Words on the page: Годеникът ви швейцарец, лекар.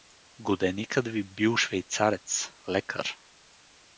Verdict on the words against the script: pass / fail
fail